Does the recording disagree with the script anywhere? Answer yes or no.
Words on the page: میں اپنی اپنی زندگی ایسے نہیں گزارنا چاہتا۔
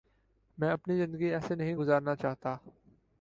yes